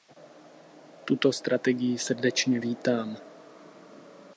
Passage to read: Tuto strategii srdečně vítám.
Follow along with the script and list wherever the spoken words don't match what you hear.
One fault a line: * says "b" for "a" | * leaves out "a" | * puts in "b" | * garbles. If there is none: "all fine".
all fine